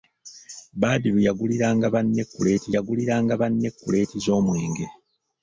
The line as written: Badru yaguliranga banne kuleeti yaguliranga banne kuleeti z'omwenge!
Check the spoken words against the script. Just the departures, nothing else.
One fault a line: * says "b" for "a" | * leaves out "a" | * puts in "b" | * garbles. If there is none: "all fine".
all fine